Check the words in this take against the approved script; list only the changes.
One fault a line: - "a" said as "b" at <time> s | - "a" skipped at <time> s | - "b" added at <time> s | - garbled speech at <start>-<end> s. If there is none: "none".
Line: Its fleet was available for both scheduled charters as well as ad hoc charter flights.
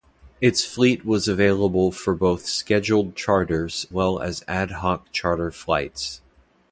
- "as" skipped at 3.9 s